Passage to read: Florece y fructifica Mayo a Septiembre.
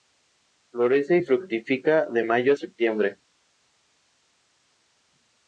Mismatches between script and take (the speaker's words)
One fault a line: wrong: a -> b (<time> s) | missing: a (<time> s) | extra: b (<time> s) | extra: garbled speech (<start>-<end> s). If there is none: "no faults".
extra: de (2.1 s)